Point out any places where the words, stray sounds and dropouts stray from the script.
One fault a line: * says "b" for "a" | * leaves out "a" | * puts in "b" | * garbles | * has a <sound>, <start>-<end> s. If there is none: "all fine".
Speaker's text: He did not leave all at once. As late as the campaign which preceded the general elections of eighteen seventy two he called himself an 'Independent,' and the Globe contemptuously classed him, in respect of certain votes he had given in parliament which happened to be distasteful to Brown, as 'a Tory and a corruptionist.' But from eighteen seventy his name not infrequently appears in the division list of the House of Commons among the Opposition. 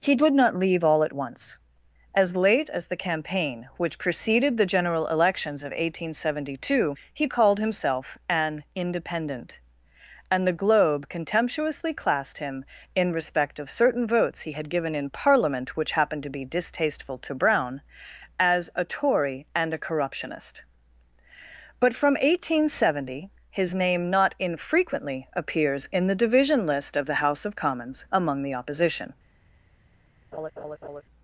* has a laugh, 30.3-31.0 s